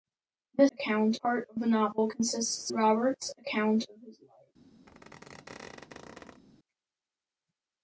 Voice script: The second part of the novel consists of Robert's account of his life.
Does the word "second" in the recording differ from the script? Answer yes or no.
yes